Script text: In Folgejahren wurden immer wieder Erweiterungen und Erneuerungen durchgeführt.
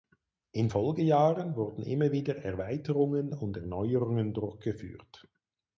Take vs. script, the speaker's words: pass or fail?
pass